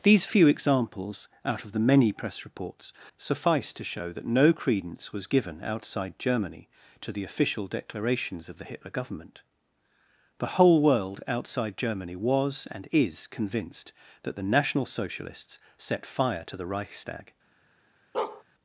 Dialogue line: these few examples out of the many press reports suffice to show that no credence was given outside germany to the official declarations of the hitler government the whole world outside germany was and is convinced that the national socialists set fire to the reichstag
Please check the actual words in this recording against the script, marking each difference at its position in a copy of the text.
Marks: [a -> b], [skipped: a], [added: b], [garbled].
these few examples out of the many press reports suffice to show that no credence was given outside germany to the official declarations of the hitler government the whole world outside germany was and is convinced that the national socialists set fire to the reichstag